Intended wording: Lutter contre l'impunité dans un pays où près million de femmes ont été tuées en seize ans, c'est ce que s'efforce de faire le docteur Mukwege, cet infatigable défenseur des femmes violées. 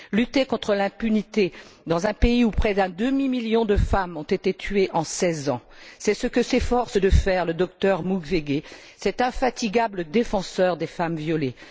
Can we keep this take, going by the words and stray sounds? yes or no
no